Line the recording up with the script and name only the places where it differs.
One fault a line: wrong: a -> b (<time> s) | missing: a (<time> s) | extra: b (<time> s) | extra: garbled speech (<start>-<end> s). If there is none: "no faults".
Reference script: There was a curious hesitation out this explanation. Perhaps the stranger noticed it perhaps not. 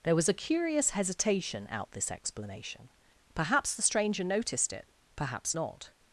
no faults